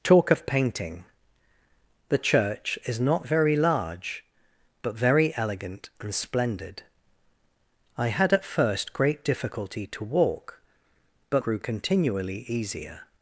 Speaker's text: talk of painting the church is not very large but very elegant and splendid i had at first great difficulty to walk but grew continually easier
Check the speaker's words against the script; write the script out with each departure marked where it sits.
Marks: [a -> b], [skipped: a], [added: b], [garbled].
talk of painting the church is not very large but very elegant and splendid i had at first great difficulty to walk but grew continually easier